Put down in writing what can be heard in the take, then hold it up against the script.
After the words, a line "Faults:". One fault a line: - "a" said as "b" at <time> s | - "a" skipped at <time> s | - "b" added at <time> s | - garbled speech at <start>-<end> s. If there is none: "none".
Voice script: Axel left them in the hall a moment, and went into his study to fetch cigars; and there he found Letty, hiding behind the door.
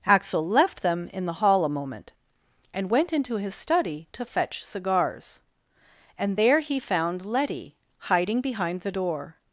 Axel left them in the hall a moment, and went into his study to fetch cigars; and there he found Letty, hiding behind the door.
Faults:
none